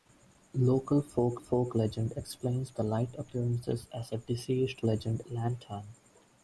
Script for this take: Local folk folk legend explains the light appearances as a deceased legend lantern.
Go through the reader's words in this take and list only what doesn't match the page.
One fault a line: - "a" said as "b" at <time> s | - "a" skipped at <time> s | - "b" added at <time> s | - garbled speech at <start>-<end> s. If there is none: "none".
none